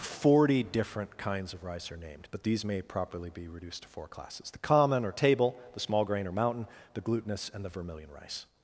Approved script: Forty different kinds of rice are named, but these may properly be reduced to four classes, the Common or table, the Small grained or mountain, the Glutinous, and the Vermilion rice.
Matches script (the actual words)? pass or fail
fail